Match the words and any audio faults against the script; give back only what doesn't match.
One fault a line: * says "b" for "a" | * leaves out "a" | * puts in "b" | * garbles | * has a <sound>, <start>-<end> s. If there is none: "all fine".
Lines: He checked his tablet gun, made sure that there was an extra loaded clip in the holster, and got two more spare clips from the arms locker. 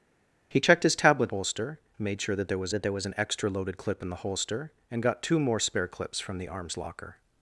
* says "holster" for "gun"
* puts in "that there was"